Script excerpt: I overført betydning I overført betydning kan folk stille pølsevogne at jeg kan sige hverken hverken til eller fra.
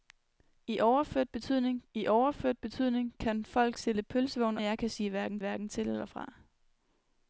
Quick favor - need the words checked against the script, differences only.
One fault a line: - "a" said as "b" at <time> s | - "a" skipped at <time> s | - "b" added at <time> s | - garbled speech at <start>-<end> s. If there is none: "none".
none